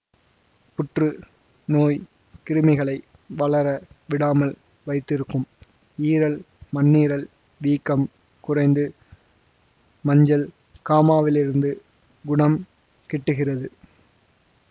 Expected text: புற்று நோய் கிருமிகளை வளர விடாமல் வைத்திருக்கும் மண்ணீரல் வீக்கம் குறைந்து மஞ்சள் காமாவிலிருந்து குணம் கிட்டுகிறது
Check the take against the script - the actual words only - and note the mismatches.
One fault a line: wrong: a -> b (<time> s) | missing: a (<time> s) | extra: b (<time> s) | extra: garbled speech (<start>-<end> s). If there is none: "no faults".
extra: ஈரல் (6.0 s)